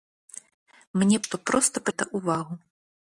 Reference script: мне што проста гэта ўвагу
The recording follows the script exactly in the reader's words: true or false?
true